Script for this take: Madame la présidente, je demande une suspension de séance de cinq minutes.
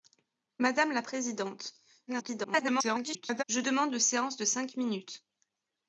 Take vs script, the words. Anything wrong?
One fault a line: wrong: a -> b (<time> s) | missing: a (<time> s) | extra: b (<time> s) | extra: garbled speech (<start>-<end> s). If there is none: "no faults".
extra: garbled speech (2.1-3.4 s)
missing: une suspension (3.9 s)